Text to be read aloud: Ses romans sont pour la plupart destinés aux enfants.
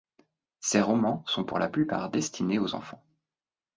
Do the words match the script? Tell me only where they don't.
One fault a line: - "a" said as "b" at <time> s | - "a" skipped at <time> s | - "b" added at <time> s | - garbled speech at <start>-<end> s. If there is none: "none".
none